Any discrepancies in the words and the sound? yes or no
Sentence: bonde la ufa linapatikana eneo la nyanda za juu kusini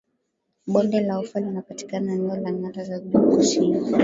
no